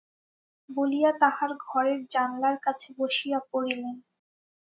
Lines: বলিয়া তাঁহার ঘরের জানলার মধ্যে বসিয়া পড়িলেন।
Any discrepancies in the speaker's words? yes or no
yes